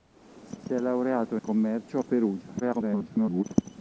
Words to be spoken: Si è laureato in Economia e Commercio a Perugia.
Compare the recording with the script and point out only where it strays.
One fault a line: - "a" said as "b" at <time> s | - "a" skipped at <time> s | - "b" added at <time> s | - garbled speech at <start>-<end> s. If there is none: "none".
- "si" added at 0.6 s
- "Economia" skipped at 1.4 s
- garbled speech at 2.6-3.4 s